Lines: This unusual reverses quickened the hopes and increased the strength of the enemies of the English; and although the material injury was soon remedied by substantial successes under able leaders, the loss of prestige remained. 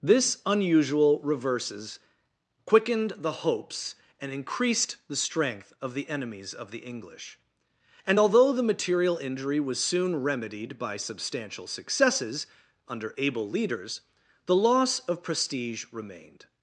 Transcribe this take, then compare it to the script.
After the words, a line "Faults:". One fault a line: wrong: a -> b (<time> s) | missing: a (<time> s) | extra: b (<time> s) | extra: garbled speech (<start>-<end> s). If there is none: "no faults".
This unusual reverses quickened the hopes and increased the strength of the enemies of the English; and although the material injury was soon remedied by substantial successes under able leaders, the loss of prestige remained.
Faults:
no faults